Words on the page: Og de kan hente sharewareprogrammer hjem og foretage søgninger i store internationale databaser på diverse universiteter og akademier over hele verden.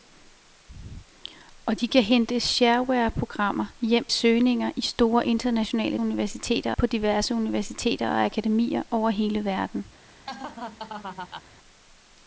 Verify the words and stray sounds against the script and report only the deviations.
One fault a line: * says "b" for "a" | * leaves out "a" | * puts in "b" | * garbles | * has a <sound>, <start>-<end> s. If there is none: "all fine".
* leaves out "og foretage"
* says "universiteter" for "databaser"
* has a laugh, 10.3-11.4 s